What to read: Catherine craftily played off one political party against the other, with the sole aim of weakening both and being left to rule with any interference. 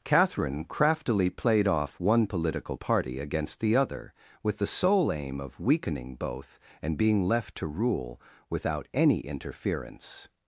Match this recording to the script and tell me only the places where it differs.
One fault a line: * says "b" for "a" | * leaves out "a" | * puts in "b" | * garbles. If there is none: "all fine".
* says "without" for "with"